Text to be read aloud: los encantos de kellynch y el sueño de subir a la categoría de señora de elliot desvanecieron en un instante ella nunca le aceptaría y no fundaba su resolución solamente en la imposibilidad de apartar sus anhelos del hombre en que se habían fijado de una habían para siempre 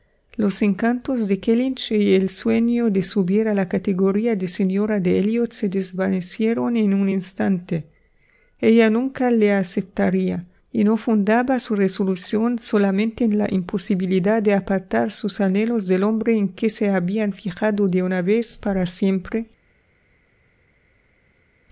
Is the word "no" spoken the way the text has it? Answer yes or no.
yes